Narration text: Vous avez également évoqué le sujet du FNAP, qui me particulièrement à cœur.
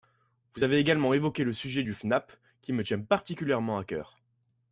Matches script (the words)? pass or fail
fail